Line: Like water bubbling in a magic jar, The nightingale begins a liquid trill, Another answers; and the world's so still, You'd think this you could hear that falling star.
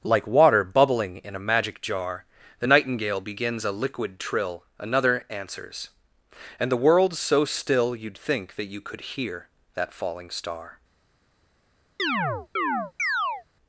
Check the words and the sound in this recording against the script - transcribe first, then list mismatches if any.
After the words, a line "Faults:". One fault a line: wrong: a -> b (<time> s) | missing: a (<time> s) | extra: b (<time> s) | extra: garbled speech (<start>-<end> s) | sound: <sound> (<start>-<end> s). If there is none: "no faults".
Like water bubbling in a magic jar, The nightingale begins a liquid trill, Another answers; and the world's so still, You'd think that you could hear that falling star.
Faults:
wrong: this -> that (8.5 s)
sound: chirp (12.0-13.4 s)